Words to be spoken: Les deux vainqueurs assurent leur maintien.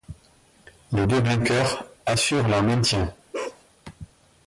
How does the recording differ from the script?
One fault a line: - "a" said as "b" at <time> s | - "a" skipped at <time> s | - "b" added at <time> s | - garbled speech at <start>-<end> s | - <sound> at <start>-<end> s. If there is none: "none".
- bark at 3.3-3.6 s